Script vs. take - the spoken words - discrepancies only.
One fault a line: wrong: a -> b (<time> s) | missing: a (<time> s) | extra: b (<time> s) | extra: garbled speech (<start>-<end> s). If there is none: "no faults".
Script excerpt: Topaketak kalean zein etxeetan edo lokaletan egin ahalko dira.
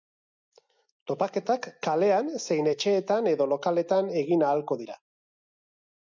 no faults